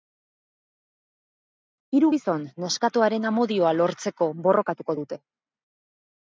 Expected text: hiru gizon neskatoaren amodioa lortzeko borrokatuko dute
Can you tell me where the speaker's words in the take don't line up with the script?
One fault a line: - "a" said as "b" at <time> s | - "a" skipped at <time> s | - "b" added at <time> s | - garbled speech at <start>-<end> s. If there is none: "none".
none